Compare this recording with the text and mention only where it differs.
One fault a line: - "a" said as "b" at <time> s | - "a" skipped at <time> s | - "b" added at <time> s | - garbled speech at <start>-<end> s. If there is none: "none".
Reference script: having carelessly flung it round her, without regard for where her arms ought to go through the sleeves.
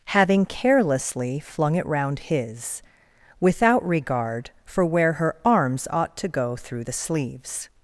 - "her" said as "his" at 2.2 s